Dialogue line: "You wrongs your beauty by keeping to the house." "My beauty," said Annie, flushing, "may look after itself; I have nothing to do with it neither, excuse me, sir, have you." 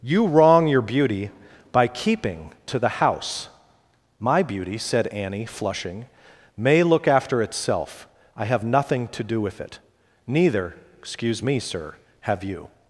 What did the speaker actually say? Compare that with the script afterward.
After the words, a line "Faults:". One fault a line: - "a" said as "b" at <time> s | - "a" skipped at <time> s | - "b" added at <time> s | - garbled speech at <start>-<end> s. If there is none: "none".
"You wrong your beauty by keeping to the house." "My beauty," said Annie, flushing, "may look after itself; I have nothing to do with it neither, excuse me, sir, have you."
Faults:
- "wrongs" said as "wrong" at 0.2 s